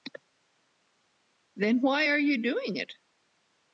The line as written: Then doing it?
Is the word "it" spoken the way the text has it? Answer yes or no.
yes